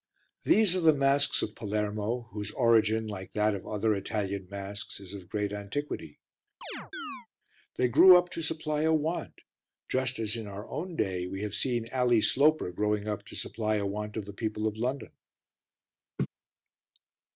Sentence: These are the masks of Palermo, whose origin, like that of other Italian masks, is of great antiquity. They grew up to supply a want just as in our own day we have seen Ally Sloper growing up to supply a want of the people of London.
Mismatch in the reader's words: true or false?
false